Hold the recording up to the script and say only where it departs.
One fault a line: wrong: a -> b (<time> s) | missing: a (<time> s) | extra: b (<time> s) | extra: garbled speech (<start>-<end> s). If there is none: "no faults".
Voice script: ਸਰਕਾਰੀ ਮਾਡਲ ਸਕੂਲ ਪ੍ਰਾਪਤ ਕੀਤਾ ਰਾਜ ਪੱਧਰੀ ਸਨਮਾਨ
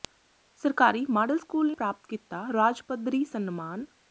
no faults